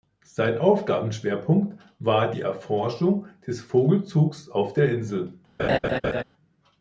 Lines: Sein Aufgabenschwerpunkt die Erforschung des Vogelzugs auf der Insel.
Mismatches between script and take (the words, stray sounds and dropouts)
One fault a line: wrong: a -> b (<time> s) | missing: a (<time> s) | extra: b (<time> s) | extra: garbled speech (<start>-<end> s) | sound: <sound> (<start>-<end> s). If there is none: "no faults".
extra: war (2.0 s)
sound: laugh (5.6-6.2 s)